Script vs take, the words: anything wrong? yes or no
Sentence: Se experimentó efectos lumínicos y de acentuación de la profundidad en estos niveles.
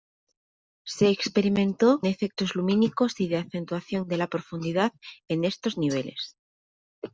no